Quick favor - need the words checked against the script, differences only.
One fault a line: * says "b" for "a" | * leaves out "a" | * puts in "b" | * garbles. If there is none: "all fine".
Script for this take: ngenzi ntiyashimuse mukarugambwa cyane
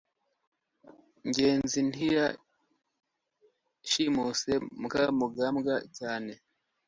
all fine